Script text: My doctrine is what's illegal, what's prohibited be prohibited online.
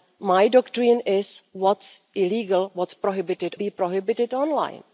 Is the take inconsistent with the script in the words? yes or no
no